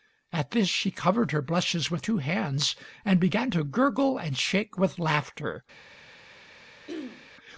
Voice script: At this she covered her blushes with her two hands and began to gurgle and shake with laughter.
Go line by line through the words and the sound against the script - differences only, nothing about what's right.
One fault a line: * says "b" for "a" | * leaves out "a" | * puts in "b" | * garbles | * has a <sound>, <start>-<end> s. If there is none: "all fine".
* leaves out "her"
* has a throat clearing, 6.9-7.3 s